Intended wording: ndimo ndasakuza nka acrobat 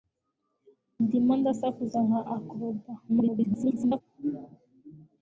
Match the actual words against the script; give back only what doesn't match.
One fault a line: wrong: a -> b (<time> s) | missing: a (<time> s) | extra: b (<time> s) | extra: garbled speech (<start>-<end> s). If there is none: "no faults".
extra: garbled speech (3.1-4.0 s)